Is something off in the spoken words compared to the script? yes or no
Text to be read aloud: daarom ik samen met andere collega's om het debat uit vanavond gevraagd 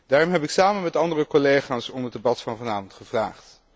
yes